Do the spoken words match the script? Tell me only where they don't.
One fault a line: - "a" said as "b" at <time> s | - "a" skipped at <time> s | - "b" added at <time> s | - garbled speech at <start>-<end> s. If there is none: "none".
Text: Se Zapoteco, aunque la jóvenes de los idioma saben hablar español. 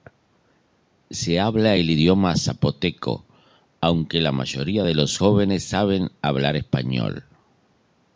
- "habla el idioma" added at 1.4 s
- "jóvenes" said as "mayoría" at 4.3 s
- "idioma" said as "jóvenes" at 5.1 s